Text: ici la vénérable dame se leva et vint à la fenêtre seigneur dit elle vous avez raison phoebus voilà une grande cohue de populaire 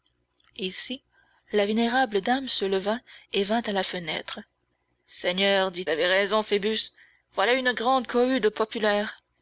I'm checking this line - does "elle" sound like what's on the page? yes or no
no